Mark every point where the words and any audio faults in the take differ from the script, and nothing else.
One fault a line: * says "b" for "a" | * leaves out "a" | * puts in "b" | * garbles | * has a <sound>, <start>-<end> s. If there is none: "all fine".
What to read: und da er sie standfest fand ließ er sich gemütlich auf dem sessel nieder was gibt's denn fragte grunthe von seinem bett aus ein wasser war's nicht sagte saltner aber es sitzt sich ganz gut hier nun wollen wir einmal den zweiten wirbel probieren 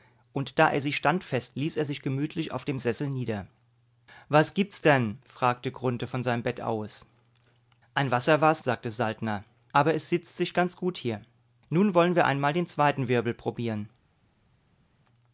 * leaves out "fand"
* leaves out "nicht"